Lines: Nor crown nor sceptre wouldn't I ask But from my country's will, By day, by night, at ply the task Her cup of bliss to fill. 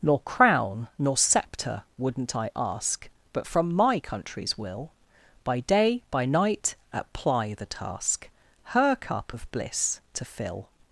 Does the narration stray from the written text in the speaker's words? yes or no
no